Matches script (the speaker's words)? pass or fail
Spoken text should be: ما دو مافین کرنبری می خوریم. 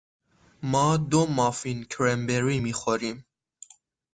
pass